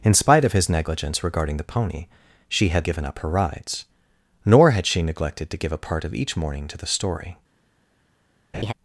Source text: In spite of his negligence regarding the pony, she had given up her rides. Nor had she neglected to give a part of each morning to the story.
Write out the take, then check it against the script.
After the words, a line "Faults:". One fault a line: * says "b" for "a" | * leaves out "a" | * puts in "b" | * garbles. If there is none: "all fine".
In spite of his negligence regarding the pony, she had given up her rides. Nor had she neglected to give a part of each morning to the story.
Faults:
all fine